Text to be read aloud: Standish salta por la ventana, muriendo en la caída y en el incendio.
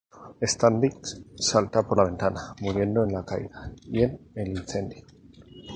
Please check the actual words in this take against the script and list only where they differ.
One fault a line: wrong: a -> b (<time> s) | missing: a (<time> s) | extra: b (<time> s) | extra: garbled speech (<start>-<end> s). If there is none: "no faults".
no faults